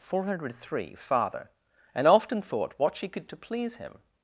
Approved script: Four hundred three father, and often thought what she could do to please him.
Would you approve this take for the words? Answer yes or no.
no